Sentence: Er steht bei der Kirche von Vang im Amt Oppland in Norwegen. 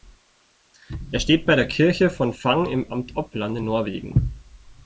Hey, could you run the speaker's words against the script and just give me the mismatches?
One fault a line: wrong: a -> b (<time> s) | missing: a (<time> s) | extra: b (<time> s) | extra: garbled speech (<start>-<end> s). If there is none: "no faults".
no faults